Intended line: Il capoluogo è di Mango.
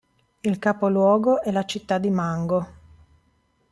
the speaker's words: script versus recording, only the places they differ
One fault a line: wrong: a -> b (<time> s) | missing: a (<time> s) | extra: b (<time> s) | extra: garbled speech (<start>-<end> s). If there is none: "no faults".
extra: la città (1.5 s)